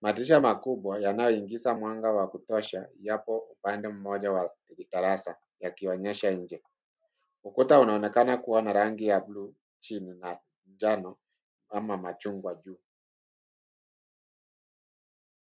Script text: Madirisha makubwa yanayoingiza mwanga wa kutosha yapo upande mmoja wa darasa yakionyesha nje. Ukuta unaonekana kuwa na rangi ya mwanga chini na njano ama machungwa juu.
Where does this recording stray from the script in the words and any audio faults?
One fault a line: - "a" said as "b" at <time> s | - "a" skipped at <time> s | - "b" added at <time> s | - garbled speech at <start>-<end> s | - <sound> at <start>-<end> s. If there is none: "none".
- "mwanga" said as "bluu" at 9.2 s